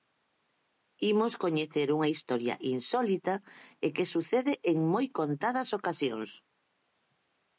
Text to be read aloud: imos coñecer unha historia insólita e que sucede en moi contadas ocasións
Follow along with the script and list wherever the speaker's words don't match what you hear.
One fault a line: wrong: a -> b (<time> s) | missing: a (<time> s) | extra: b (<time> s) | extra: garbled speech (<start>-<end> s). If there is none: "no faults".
no faults